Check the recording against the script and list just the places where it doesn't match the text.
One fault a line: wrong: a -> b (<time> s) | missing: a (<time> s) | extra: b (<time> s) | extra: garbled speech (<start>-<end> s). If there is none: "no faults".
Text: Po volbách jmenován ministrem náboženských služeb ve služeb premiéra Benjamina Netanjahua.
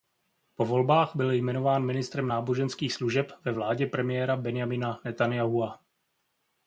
extra: byl (1.1 s)
wrong: služeb -> vládě (3.5 s)